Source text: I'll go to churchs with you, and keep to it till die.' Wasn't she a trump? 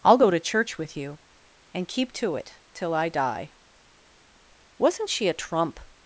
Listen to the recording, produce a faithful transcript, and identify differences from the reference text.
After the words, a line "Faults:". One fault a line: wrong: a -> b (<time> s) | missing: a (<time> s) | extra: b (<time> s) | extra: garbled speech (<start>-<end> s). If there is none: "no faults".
I'll go to church with you, and keep to it till I die.' Wasn't she a trump?
Faults:
wrong: churchs -> church (0.4 s)
extra: I (2.9 s)